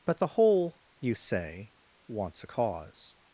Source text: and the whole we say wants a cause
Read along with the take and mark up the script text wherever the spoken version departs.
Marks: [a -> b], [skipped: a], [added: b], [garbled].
[and -> but] the whole [we -> you] say wants a cause